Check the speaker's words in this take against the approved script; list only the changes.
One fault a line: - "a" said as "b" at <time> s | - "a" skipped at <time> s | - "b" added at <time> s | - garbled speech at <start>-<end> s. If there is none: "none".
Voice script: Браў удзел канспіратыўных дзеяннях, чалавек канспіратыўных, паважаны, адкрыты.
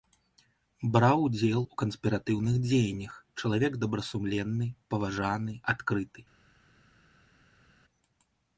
- "у" added at 1.6 s
- "канспіратыўных" said as "добрасумленны" at 3.9 s